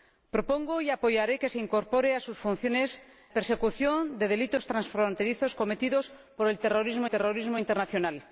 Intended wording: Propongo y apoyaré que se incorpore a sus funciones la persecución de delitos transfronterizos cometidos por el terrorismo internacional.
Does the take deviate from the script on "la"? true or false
true